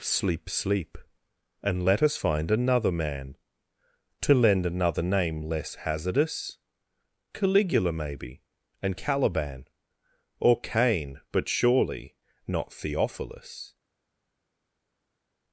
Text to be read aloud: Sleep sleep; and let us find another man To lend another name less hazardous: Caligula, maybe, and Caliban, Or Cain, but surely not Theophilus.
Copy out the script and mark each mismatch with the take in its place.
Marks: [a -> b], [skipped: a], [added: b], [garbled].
Sleep sleep; and let us find another man To lend another name less hazardous: Caligula, maybe, and Caliban, Or Cain, but surely not Theophilus.